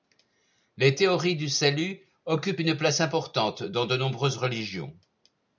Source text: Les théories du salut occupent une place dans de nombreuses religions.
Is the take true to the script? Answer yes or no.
no